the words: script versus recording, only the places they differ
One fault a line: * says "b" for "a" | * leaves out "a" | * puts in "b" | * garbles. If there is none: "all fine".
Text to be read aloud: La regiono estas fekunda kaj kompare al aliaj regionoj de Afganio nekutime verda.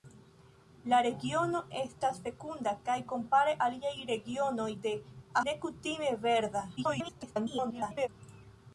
* leaves out "al"
* leaves out "Afganio"
* garbles